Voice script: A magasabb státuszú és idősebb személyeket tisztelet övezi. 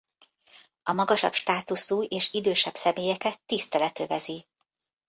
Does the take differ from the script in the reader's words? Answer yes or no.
no